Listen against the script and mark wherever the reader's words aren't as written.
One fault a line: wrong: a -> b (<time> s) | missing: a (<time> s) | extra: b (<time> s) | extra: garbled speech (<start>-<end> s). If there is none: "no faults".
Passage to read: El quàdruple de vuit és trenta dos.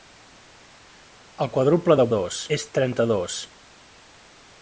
wrong: vuit -> dos (2.2 s)